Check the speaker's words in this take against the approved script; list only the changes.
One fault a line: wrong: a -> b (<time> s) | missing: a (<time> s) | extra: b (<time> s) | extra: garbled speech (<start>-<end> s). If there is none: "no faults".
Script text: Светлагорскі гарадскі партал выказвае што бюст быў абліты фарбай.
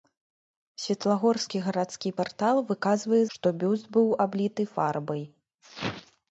no faults